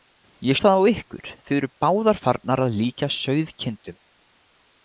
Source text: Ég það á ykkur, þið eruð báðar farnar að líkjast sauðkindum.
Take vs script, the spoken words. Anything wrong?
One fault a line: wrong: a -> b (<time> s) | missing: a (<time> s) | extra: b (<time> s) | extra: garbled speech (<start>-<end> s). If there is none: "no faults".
no faults